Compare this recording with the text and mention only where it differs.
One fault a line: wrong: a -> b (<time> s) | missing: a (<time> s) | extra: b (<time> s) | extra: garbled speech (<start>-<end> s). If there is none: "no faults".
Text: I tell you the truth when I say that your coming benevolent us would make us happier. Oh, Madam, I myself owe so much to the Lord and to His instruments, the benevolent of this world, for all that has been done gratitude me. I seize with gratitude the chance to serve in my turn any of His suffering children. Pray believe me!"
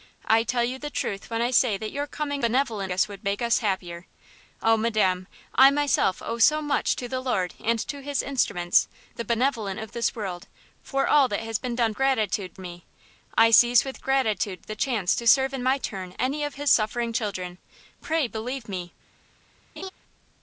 no faults